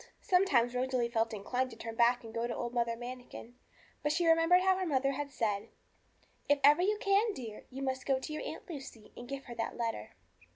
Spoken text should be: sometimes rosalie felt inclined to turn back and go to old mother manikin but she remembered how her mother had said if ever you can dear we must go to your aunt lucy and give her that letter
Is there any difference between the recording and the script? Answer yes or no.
yes